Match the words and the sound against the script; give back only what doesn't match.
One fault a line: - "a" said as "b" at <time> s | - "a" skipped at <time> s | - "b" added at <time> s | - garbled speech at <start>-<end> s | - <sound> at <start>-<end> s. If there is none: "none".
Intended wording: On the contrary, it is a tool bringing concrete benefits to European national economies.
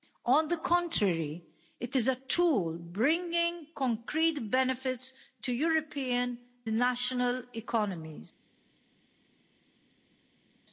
none